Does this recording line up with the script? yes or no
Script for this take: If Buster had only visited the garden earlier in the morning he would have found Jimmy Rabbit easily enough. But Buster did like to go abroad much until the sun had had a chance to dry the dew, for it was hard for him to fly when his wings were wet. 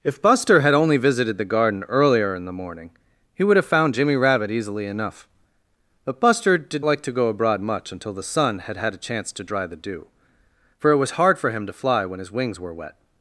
yes